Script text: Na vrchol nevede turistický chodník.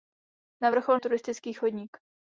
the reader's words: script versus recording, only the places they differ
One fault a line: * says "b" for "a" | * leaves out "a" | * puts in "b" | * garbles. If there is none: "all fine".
* leaves out "nevede"